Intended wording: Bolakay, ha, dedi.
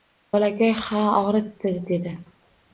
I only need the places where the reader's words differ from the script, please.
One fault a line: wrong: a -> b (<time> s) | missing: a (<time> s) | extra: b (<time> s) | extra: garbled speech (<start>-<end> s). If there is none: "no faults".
extra: ogʻritdi (1.2 s)